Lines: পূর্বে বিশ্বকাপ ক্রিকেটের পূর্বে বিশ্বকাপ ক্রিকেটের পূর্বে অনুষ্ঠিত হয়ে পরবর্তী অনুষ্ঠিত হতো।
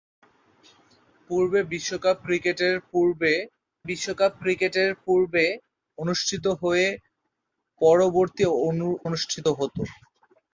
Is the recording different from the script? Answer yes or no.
no